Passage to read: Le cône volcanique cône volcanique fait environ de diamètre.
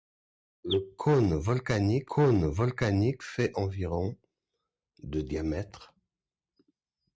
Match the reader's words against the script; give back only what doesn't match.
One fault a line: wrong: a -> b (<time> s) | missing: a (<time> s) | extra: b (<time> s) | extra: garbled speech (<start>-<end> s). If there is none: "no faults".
no faults